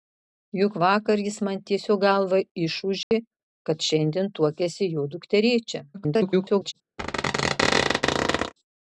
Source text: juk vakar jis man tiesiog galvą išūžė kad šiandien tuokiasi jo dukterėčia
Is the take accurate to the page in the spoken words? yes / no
no